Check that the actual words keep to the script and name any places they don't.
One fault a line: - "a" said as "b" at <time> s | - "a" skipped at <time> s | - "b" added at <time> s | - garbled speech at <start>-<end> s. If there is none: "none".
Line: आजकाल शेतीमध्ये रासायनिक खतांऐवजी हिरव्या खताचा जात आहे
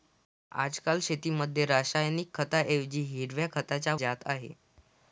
none